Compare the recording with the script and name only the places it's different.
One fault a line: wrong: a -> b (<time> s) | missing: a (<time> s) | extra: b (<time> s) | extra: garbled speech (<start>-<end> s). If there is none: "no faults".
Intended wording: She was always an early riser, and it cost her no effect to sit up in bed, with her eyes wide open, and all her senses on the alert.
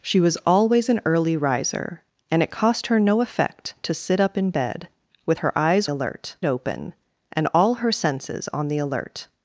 wrong: wide -> alert (5.9 s)